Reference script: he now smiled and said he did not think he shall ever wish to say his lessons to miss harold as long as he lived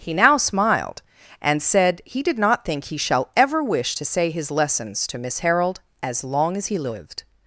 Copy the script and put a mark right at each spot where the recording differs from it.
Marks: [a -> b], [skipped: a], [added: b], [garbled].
he now smiled and said he did not think he shall ever wish to say his lessons to miss harold as long as he lived